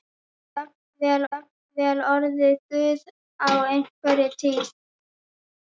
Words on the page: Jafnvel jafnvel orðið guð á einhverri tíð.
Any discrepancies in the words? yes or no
no